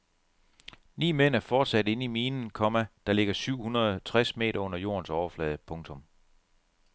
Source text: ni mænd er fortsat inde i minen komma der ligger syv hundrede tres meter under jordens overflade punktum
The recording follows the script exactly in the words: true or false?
true